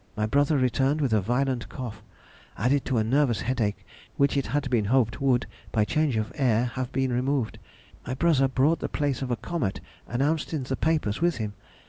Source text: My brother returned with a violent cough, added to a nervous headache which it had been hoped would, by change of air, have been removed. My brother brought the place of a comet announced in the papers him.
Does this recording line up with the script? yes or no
no